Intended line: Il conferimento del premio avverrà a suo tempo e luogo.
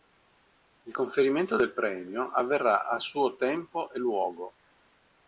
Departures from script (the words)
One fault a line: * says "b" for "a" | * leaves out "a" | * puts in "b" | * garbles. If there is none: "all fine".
all fine